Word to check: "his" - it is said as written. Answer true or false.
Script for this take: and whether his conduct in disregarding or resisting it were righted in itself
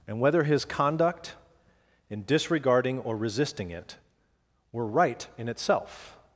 true